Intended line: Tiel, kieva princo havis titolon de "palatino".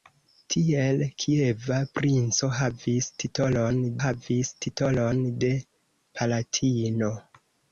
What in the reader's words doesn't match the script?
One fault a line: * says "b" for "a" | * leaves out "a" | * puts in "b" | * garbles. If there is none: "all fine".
* puts in "havis titolon"